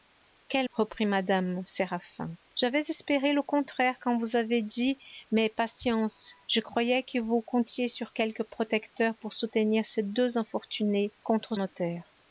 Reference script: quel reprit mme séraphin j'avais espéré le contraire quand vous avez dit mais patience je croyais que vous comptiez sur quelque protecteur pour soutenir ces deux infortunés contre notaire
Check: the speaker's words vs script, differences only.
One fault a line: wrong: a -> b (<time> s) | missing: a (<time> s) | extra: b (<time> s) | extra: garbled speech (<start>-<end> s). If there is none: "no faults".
no faults